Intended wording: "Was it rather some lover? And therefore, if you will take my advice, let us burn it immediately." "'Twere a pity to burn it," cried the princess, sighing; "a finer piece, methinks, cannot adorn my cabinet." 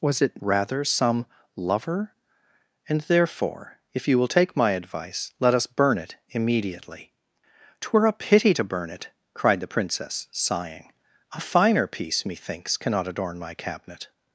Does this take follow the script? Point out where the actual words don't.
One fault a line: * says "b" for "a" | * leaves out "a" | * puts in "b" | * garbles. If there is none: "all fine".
all fine